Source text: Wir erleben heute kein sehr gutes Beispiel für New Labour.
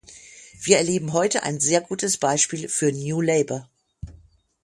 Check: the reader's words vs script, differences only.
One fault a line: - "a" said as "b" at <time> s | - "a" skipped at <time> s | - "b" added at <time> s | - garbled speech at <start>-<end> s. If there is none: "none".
- "kein" said as "ein" at 1.4 s